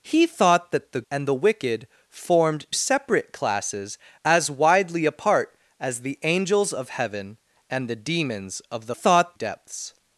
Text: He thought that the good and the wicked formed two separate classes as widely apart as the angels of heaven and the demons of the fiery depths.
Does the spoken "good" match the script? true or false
false